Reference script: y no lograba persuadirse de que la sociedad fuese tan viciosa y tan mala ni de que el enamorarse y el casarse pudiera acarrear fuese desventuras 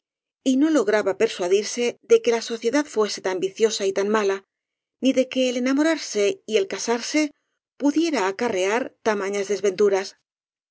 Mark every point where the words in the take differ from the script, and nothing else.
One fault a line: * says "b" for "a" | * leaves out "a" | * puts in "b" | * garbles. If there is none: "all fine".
* says "tamañas" for "fuese"